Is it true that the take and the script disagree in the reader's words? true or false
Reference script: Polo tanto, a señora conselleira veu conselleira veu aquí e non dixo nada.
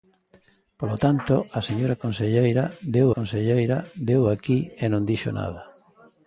false